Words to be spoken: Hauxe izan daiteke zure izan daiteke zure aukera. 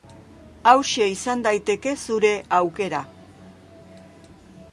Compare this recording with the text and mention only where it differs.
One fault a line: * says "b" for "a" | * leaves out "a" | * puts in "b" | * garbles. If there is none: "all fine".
* leaves out "izan daiteke zure"